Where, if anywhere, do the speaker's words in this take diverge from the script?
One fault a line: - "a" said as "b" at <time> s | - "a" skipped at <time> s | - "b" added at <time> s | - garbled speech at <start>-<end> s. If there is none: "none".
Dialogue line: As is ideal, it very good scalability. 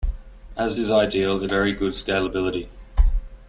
none